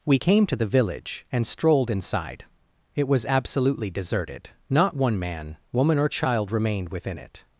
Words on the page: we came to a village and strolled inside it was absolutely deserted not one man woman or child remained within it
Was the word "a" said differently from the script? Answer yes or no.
yes